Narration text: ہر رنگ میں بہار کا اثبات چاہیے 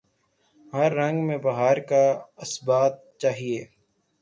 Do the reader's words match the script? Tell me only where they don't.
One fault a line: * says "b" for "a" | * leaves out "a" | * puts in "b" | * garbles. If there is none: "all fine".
all fine